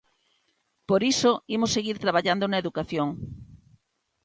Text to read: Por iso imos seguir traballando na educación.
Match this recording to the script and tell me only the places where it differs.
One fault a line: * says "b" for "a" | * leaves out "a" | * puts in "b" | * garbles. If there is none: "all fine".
all fine